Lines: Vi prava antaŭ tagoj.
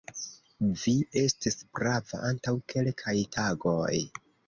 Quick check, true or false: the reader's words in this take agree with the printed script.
false